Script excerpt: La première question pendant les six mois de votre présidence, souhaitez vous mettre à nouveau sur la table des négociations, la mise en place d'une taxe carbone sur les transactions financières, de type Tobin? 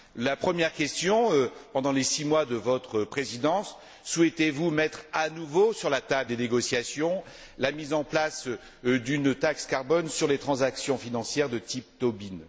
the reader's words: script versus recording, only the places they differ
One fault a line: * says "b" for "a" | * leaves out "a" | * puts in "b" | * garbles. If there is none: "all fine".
all fine